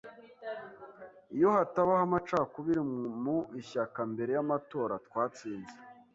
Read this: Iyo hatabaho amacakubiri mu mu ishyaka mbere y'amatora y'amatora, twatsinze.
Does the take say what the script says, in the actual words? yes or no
no